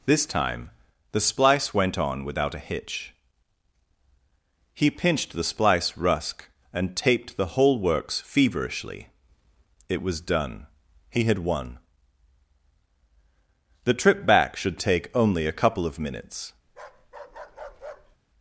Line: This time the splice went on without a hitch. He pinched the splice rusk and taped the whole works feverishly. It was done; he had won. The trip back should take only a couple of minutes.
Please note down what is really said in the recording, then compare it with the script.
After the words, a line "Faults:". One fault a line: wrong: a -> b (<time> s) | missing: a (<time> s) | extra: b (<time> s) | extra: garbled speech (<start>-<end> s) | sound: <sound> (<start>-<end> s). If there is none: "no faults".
This time the splice went on without a hitch. He pinched the splice rusk and taped the whole works feverishly. It was done; he had won. The trip back should take only a couple of minutes.
Faults:
sound: bark (16.7-18.2 s)